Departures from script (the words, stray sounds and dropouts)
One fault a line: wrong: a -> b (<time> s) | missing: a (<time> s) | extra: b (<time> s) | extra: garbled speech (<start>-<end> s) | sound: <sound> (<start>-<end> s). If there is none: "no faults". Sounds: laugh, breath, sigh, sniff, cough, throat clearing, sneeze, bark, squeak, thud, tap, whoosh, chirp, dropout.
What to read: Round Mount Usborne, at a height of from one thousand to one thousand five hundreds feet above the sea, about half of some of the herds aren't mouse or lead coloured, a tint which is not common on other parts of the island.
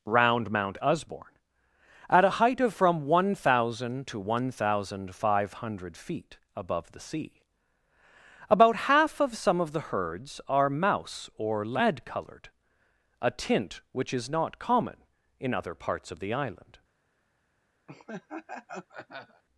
wrong: hundreds -> hundred (5.5 s)
wrong: aren't -> are (10.5 s)
wrong: on -> in (15.4 s)
sound: laugh (17.9-19.4 s)